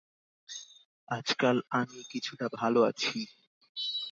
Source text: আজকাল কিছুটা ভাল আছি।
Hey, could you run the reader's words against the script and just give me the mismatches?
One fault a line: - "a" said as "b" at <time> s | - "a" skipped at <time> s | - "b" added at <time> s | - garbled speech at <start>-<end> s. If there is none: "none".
- "আমি" added at 1.7 s